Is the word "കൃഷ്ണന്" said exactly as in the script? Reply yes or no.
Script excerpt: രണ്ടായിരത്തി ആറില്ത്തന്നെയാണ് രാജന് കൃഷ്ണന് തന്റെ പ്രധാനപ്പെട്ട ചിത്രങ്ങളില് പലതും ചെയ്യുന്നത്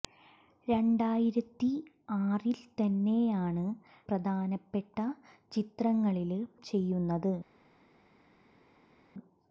no